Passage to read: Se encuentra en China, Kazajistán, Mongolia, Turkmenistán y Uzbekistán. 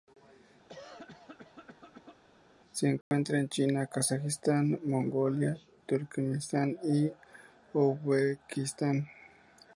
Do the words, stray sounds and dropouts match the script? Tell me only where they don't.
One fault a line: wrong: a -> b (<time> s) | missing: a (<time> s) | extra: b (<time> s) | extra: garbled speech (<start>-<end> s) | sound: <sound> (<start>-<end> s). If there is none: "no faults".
sound: cough (0.7-2.2 s)
sound: dropout (3.0-3.1 s)